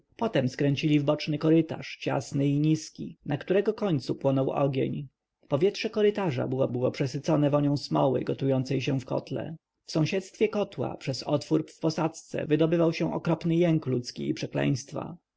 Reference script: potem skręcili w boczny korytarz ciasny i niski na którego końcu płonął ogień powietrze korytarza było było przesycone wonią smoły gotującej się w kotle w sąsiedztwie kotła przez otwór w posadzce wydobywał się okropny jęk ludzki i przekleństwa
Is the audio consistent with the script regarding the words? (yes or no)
yes